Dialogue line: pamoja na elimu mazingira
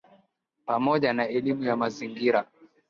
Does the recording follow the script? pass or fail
fail